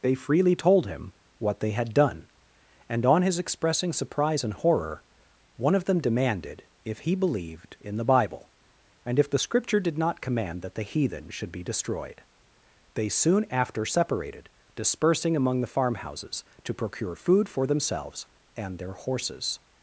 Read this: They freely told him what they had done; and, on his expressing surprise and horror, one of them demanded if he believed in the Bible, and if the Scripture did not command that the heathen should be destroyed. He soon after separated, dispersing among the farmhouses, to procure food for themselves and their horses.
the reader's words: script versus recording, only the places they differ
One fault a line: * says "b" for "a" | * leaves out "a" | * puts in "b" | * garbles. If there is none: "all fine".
* says "They" for "He"